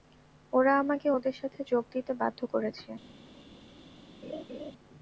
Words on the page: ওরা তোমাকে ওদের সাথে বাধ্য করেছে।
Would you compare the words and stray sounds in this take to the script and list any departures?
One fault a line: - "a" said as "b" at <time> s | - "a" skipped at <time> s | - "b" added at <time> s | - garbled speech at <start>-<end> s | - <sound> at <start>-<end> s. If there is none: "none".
- "তোমাকে" said as "আমাকে" at 0.8 s
- "যোগ দিতে" added at 1.7 s
- laugh at 4.2-4.7 s